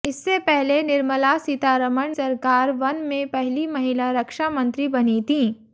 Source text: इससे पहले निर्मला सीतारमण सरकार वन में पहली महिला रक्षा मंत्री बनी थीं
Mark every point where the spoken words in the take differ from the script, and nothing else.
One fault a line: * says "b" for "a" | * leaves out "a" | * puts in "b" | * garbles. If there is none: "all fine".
all fine